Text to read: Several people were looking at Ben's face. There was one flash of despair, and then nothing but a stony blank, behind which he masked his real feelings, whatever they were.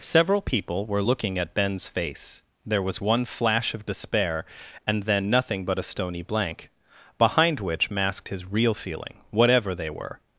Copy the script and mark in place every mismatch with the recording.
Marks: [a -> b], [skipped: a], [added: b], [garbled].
Several people were looking at Ben's face. There was one flash of despair, and then nothing but a stony blank, behind which [skipped: he] masked his real [feelings, -> feeling] whatever they were.